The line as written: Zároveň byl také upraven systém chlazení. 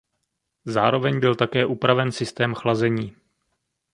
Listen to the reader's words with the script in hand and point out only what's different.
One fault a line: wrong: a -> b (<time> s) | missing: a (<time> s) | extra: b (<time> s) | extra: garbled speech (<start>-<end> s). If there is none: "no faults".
no faults